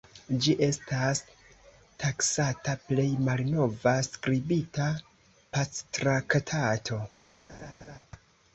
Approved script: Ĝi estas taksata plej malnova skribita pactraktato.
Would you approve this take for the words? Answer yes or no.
yes